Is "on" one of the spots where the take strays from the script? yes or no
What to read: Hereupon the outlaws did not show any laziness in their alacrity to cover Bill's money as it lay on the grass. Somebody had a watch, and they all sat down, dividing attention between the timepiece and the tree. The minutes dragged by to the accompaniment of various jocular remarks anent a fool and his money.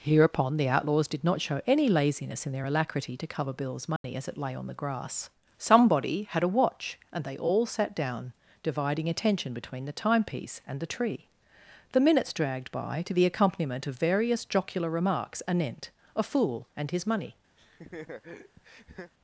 no